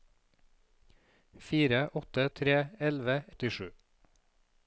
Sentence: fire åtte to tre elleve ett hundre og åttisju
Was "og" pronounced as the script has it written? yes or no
no